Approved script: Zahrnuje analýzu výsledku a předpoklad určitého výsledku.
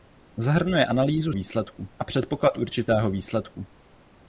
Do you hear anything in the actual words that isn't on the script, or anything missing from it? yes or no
no